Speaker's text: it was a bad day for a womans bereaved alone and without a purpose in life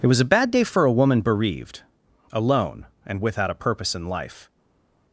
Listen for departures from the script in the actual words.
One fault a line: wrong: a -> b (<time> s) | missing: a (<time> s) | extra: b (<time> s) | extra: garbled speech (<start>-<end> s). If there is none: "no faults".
wrong: womans -> woman (0.9 s)